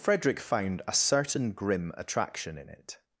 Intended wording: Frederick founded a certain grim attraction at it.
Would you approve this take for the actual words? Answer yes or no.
no